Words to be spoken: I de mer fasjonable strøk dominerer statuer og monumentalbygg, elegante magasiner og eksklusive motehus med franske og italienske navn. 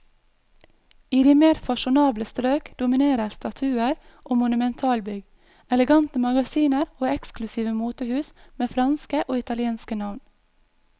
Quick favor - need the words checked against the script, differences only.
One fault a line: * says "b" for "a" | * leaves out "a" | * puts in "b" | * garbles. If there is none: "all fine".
all fine